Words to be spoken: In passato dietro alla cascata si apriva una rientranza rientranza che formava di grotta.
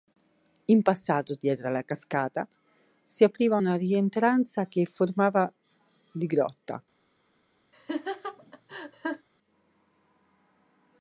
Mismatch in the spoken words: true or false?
true